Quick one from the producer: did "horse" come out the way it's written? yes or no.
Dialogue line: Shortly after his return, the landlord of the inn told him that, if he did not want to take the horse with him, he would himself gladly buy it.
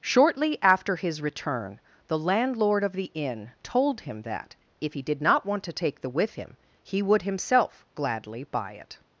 no